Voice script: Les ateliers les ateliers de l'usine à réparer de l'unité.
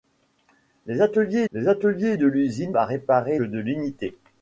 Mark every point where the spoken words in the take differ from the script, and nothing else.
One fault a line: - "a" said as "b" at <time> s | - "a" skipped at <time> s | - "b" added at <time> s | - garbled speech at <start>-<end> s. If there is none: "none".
none